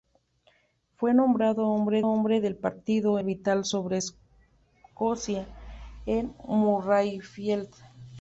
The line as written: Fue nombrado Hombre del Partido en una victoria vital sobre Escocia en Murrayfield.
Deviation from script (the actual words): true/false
true